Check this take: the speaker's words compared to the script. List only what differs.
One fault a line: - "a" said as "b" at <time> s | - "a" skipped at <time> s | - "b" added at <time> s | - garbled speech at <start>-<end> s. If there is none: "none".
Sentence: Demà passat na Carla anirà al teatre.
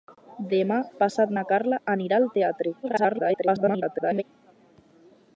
- garbled speech at 2.8-4.2 s